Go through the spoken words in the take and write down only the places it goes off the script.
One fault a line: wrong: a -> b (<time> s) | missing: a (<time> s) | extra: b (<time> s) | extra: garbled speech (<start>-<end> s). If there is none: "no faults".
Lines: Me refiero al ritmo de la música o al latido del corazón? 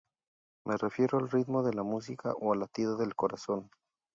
no faults